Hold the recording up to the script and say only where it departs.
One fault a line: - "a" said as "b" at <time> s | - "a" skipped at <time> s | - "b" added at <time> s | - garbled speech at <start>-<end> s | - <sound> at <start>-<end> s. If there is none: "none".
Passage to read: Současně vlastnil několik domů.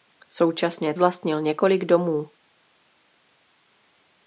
none